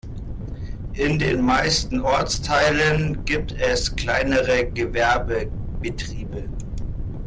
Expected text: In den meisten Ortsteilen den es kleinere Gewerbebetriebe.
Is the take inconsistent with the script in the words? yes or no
yes